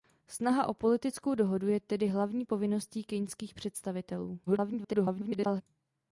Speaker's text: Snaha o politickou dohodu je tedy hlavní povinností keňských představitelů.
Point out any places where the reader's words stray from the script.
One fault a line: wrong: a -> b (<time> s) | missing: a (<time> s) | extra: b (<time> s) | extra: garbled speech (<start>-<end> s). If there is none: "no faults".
extra: garbled speech (4.5-5.6 s)